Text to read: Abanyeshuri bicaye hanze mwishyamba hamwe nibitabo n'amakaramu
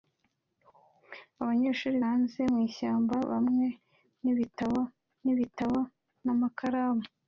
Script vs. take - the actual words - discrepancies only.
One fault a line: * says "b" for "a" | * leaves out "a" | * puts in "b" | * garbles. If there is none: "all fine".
* leaves out "bicaye"
* puts in "nibitabo"